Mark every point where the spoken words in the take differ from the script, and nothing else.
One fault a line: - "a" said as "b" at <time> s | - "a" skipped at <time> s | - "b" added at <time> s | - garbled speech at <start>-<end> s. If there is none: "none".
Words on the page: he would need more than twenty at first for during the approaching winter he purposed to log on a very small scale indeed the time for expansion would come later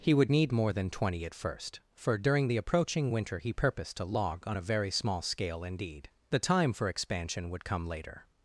none